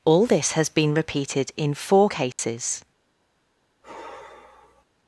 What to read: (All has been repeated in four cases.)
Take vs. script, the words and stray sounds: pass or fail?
fail